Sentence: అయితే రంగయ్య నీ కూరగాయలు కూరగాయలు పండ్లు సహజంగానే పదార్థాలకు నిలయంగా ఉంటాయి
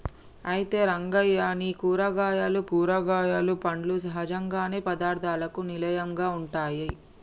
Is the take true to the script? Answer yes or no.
yes